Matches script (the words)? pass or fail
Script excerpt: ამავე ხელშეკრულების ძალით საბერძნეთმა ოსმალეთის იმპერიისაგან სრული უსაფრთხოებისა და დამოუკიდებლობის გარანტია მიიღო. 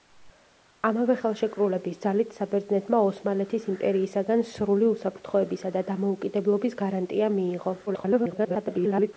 fail